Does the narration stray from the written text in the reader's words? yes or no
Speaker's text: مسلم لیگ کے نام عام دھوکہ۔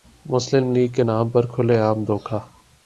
yes